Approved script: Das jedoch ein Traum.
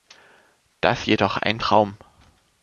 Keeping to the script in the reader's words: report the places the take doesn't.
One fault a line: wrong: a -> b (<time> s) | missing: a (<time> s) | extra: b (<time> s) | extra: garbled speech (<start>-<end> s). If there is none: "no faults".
no faults